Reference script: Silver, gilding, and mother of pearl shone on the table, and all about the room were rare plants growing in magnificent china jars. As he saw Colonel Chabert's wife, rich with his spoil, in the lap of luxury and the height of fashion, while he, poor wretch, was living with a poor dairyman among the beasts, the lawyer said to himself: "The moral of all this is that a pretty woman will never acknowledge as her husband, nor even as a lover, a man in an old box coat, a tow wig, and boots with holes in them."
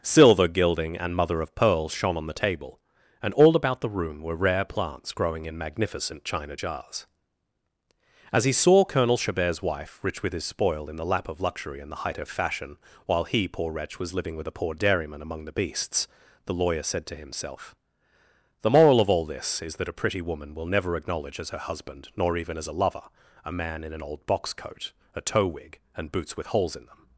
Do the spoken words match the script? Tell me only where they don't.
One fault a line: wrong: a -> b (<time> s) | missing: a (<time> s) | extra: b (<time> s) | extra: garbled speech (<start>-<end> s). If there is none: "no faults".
no faults